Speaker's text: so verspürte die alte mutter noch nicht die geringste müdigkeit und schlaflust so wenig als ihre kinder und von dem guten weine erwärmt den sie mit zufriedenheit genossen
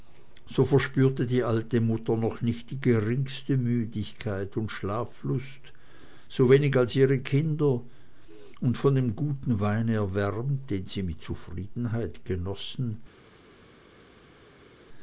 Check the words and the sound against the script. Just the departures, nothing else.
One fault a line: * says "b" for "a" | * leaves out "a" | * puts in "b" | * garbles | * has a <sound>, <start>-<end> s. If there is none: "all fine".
all fine